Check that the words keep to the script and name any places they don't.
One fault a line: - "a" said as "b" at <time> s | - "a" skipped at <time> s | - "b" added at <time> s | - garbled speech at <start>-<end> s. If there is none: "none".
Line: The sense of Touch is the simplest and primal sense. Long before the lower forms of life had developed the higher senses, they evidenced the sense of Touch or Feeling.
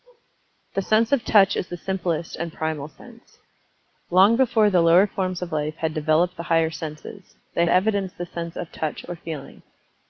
none